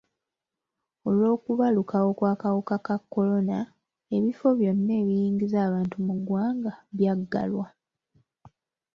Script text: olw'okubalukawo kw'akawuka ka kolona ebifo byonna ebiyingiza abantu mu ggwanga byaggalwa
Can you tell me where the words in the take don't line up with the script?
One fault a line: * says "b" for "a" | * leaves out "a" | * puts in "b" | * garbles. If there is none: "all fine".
all fine